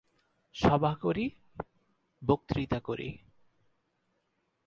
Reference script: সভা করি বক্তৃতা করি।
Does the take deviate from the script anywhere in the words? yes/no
no